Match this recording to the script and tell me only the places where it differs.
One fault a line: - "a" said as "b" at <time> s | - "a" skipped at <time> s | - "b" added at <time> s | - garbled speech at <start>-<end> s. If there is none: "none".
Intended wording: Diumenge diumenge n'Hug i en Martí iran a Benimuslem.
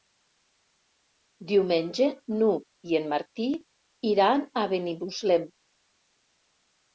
- "diumenge" skipped at 2.1 s